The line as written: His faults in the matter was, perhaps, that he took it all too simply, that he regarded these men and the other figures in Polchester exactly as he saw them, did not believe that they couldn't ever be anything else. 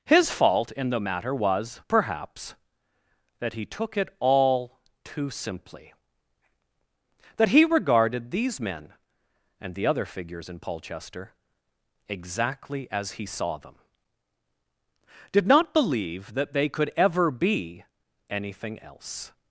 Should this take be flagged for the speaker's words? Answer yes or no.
yes